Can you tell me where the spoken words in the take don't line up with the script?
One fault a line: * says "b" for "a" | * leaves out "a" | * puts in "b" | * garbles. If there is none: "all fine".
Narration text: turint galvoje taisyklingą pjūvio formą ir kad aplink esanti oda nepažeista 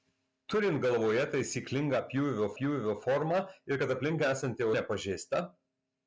* puts in "pjūvio"
* leaves out "oda"